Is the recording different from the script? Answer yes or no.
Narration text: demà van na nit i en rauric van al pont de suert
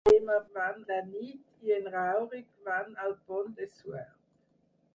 no